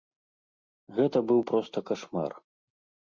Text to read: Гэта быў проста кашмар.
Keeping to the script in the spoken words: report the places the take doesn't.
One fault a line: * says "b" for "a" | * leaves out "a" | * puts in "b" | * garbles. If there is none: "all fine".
all fine